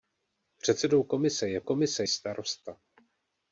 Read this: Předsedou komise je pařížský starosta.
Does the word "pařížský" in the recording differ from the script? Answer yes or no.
yes